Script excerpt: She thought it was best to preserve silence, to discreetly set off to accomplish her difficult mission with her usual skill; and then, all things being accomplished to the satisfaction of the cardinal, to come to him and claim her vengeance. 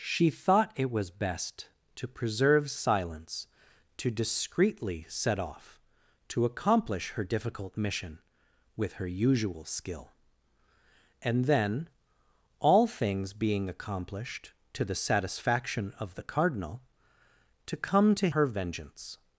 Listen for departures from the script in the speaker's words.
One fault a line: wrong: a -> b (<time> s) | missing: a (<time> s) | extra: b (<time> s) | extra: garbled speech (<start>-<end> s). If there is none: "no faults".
missing: him and claim (18.3 s)